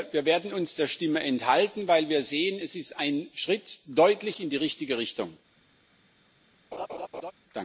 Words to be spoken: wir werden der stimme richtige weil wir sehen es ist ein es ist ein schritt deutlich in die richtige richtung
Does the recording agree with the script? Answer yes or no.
no